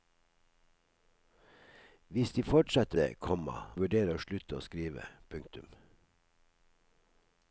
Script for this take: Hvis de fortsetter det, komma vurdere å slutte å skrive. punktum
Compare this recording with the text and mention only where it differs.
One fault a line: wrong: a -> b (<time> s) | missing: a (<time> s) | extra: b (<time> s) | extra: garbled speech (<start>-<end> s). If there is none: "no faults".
no faults